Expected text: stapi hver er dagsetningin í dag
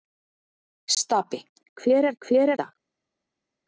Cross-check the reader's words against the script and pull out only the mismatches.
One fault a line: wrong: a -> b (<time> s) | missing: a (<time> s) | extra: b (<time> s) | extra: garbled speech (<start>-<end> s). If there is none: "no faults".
wrong: dagsetningin -> hver (2.3 s)